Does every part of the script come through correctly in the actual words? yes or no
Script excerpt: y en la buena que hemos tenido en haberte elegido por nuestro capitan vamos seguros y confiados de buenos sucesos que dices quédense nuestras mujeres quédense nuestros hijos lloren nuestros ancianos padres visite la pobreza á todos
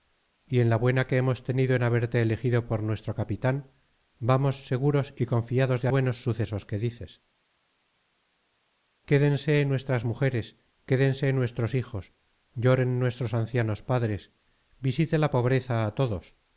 yes